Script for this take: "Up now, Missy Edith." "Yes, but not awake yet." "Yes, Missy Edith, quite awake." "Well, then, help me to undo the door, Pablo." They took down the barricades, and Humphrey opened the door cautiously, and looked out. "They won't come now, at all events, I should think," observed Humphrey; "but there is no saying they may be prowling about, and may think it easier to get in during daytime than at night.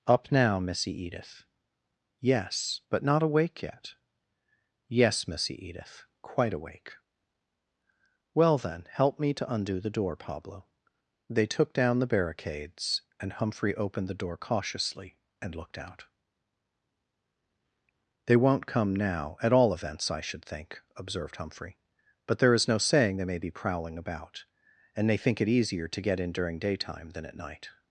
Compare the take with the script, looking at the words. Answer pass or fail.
fail